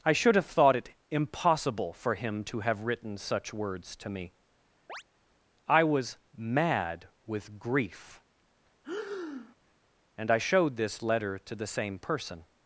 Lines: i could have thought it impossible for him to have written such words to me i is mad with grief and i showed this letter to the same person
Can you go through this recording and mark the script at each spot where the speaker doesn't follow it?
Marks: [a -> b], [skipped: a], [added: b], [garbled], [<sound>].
i [could -> should] have thought it impossible for him to have written such words to me [chirp] i [is -> was] mad with grief [breath] and i showed this letter to the same person